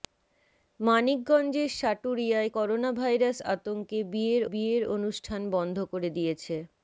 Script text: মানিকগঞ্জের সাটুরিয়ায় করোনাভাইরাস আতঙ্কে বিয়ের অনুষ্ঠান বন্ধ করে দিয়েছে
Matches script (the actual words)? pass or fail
fail